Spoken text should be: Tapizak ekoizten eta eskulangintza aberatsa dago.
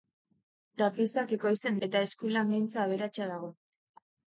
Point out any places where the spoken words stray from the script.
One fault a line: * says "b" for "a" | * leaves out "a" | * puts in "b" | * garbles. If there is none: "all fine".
all fine